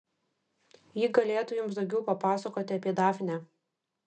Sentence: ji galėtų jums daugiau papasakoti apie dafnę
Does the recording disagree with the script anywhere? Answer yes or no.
no